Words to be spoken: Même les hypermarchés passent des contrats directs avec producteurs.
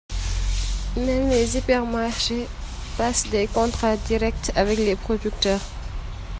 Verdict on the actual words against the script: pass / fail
fail